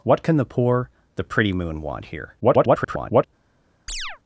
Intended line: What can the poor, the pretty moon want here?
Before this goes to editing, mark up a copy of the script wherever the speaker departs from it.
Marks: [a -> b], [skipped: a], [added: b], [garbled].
What can the poor, the pretty moon want here? [garbled]